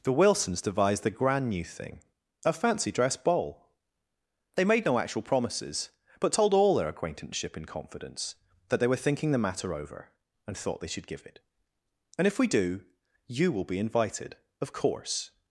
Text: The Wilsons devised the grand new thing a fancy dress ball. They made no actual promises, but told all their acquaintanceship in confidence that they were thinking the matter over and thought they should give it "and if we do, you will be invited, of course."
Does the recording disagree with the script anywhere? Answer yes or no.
no